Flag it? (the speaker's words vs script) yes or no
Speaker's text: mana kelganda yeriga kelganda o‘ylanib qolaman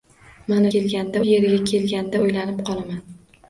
no